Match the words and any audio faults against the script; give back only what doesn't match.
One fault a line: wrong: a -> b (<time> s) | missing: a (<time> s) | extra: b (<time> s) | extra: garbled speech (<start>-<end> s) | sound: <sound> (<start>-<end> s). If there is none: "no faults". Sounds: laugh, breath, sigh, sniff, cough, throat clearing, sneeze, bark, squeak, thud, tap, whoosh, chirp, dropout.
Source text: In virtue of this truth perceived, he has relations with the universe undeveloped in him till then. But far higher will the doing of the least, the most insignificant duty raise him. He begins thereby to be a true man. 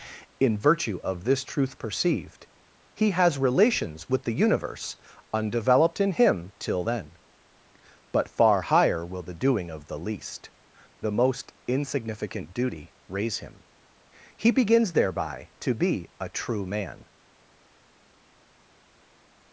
no faults